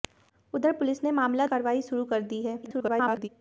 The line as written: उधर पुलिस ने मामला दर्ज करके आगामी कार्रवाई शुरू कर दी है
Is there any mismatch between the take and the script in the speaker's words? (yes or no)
yes